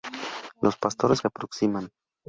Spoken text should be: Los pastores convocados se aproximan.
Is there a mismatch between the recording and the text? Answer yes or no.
yes